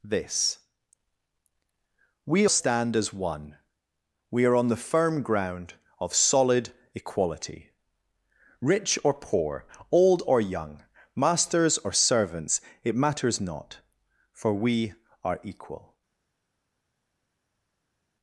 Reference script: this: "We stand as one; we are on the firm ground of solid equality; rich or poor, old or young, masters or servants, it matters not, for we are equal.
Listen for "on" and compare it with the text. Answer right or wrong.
right